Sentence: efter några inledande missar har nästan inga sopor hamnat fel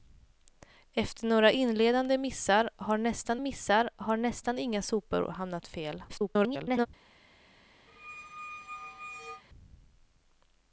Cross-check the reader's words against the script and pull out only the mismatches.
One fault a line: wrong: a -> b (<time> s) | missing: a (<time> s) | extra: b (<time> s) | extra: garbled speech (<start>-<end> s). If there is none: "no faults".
extra: missar har nästan (3.4 s)
extra: garbled speech (6.1-6.9 s)